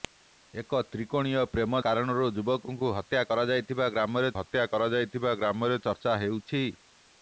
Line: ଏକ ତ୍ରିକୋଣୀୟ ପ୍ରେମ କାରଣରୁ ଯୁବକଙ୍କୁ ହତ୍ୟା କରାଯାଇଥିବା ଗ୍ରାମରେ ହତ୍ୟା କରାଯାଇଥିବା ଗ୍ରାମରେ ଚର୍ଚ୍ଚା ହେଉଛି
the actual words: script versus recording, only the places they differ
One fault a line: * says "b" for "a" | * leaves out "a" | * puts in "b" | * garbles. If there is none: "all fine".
all fine